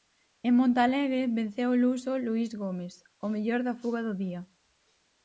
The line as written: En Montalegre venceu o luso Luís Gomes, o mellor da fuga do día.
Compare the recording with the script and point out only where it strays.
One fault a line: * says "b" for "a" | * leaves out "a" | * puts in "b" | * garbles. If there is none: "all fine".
all fine